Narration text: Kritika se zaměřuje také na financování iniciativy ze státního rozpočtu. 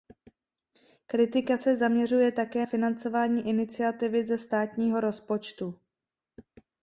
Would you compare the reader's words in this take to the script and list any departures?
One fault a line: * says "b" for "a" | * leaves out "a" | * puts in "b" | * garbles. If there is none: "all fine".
* leaves out "na"